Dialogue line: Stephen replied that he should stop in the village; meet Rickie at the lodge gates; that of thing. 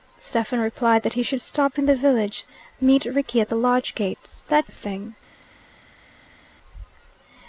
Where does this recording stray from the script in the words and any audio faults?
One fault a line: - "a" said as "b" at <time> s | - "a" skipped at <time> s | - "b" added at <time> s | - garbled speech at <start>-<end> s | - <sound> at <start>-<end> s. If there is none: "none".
none